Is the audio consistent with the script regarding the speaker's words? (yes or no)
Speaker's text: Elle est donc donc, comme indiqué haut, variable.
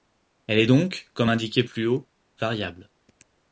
no